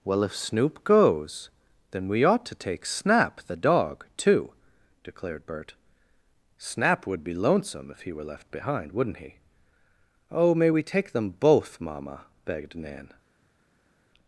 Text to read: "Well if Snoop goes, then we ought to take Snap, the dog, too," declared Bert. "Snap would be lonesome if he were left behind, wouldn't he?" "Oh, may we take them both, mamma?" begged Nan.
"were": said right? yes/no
yes